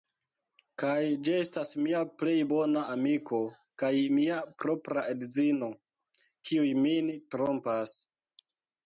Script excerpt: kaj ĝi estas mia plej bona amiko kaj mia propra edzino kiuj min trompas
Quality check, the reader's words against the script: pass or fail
pass